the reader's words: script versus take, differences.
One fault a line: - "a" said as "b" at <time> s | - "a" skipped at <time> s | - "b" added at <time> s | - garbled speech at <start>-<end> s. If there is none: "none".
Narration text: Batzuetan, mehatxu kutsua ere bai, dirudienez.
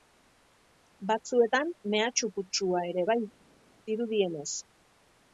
none